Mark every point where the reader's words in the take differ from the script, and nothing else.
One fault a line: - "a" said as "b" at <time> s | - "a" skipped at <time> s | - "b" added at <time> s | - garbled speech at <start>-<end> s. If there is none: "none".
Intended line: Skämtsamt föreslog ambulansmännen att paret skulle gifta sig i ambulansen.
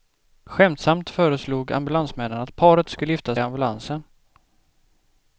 - "sig" skipped at 3.4 s